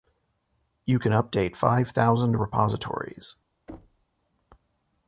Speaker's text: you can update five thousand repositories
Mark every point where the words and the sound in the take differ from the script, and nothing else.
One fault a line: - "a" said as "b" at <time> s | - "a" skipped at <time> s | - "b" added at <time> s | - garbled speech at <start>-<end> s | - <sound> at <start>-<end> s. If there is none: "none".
- thud at 3.7-4.1 s